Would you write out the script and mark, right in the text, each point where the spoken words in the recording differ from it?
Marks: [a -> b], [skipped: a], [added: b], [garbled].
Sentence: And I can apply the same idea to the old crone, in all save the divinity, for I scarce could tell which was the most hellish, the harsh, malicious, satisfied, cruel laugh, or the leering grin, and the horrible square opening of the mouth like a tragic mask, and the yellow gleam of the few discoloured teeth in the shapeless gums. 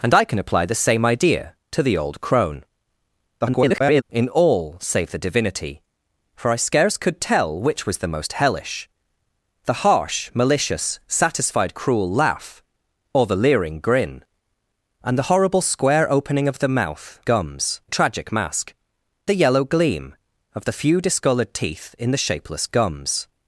And I can apply the same idea to the old crone, [garbled] in all save the divinity, for I scarce could tell which was the most hellish, the harsh, malicious, satisfied, cruel laugh, or the leering grin, and the horrible square opening of the mouth [like -> gums] a tragic mask, [skipped: and] the yellow gleam of the few discoloured teeth in the shapeless gums.